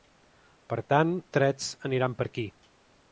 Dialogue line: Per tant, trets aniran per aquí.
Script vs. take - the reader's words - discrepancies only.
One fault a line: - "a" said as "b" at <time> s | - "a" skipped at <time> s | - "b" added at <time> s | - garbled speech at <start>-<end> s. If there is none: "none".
none